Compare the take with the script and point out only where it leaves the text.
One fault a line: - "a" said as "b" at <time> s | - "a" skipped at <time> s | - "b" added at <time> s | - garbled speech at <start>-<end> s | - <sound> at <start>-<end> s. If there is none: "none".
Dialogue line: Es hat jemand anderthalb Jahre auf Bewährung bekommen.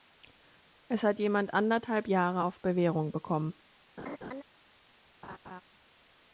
- laugh at 4.0-4.4 s
- laugh at 5.2-5.6 s